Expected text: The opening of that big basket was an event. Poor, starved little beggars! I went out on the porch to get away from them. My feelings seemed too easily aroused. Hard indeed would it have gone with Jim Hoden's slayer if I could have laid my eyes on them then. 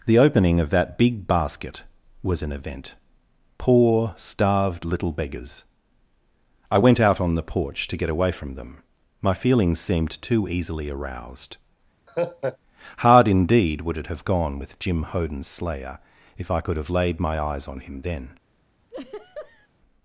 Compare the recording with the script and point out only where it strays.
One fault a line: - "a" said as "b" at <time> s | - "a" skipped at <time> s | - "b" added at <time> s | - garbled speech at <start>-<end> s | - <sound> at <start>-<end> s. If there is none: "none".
- laugh at 12.1-12.6 s
- "them" said as "him" at 17.8 s
- laugh at 18.9-19.7 s